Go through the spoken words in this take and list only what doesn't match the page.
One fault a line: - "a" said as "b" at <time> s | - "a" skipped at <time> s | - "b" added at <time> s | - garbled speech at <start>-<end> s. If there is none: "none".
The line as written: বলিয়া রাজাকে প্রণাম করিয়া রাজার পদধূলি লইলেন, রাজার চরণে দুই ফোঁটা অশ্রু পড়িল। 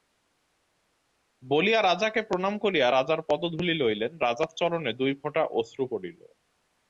none